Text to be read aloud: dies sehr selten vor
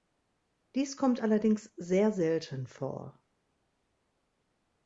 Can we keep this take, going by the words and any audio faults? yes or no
no